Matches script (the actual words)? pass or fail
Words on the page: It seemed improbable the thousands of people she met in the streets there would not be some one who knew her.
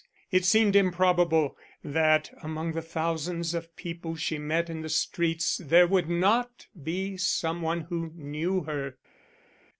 fail